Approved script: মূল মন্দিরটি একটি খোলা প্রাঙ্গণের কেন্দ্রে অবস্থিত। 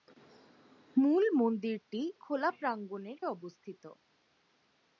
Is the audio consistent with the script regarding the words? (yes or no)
no